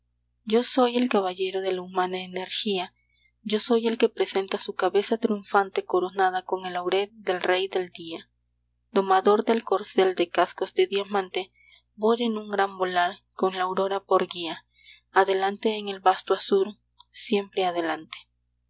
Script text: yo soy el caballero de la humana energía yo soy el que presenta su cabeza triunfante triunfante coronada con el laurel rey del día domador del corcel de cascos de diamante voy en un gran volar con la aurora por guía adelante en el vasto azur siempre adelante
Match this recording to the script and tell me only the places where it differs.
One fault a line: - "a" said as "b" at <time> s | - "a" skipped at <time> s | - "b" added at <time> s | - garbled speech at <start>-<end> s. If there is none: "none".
- "triunfante" skipped at 5.8 s
- "del" added at 7.1 s